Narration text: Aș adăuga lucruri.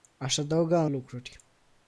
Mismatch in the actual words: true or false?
false